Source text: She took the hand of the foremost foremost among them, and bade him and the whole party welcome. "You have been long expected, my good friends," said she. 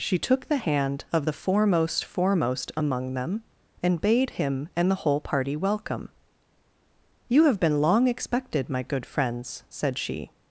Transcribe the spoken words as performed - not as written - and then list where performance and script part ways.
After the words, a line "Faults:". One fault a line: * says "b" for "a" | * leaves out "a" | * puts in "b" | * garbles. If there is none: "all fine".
She took the hand of the foremost foremost among them, and bade him and the whole party welcome. "You have been long expected, my good friends," said she.
Faults:
all fine